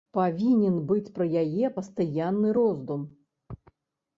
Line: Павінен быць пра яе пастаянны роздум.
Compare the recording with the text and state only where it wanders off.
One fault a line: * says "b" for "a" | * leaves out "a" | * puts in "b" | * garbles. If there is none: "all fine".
all fine